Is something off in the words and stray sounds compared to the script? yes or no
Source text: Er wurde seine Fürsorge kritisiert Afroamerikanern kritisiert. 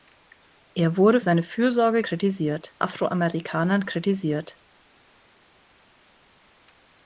no